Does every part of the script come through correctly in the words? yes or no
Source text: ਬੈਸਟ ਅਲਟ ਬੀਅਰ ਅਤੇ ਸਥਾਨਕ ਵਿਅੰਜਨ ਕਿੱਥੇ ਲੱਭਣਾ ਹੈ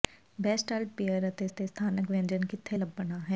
no